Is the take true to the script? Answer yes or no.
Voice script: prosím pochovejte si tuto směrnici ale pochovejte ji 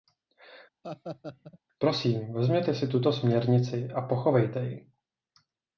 no